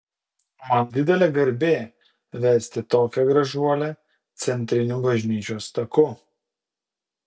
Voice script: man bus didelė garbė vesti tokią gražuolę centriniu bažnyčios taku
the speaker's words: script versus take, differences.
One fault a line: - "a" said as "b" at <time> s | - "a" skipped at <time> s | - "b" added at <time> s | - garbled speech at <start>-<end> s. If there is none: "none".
- "bus" skipped at 0.9 s